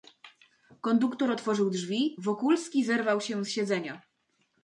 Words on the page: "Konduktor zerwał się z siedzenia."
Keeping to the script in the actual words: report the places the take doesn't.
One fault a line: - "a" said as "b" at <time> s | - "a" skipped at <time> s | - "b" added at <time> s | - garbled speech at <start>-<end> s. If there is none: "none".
- "otworzył drzwi Wokulski" added at 1.3 s